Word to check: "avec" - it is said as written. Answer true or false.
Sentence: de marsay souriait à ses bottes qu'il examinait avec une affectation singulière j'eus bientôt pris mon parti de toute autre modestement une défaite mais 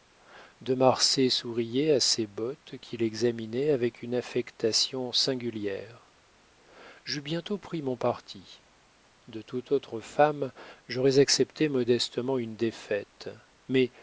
true